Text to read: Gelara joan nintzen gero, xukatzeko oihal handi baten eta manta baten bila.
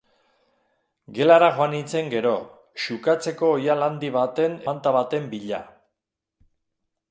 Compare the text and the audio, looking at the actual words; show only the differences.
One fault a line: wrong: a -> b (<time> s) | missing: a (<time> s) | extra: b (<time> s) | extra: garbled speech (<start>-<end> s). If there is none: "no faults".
missing: eta (4.6 s)